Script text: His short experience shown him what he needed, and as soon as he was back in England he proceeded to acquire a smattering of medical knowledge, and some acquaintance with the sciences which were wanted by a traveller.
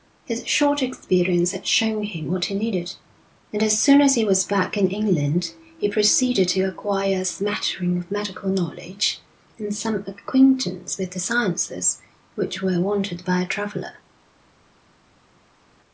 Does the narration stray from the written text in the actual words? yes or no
yes